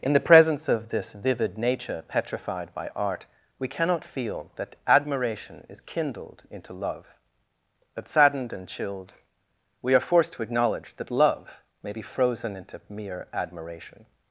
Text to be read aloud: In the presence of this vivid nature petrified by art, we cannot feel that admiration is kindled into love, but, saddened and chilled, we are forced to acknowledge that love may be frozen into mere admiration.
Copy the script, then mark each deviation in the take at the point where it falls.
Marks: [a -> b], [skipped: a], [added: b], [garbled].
In the presence of this vivid nature petrified by art, we cannot feel that admiration is kindled into love, but, saddened and chilled, we are forced to acknowledge that love may be frozen into mere admiration.